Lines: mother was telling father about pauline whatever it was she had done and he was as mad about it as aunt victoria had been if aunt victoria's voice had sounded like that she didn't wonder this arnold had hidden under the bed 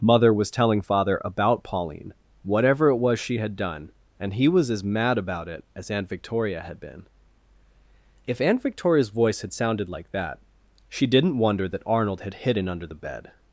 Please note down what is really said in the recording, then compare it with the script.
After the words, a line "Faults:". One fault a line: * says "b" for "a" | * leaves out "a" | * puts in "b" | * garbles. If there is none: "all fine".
mother was telling father about pauline whatever it was she had done and he was as mad about it as aunt victoria had been if aunt victoria's voice had sounded like that she didn't wonder that arnold had hidden under the bed
Faults:
* says "that" for "this"